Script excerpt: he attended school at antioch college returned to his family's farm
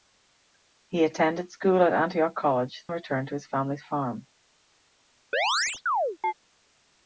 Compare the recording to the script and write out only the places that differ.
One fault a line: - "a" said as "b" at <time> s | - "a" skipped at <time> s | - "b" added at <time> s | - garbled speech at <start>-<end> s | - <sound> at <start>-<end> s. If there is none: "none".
- chirp at 5.3-6.3 s